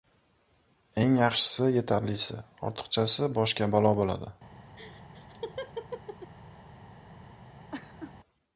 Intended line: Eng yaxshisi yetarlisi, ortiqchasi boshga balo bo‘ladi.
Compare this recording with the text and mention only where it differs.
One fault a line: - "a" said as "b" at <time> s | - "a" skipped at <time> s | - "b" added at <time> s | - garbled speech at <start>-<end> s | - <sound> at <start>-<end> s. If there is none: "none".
- laugh at 4.8-6.3 s
- laugh at 7.7-8.1 s